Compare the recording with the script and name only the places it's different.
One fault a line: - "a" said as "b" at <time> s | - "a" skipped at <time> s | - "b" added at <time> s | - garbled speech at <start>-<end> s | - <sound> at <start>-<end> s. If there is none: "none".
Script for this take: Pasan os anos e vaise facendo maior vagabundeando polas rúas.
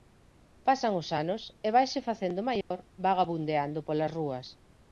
- dropout at 2.6-2.7 s